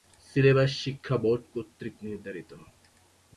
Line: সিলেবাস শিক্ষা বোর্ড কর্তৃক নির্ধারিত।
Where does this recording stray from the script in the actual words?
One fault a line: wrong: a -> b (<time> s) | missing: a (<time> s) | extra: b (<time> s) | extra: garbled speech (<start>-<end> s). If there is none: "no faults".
no faults